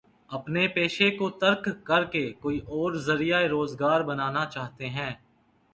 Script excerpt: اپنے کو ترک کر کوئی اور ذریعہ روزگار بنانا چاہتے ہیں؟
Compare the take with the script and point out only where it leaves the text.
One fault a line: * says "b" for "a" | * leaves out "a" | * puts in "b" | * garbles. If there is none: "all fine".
* puts in "پیشے"
* puts in "کے"